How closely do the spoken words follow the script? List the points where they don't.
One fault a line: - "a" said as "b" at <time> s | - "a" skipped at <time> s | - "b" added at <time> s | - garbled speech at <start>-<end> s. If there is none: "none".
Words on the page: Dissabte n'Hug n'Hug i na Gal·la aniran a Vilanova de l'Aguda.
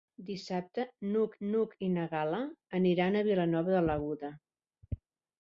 none